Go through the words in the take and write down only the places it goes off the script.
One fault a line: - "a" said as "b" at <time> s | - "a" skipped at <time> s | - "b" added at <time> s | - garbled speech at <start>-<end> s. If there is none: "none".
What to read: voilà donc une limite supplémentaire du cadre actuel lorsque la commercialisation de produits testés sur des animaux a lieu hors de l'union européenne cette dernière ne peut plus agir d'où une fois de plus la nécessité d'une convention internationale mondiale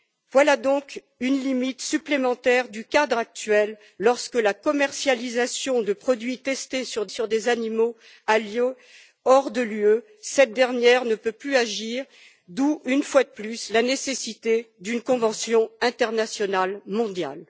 - "sur" added at 7.1 s